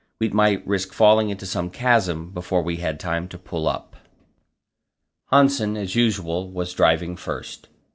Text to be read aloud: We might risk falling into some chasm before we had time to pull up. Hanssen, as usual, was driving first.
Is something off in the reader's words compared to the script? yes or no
no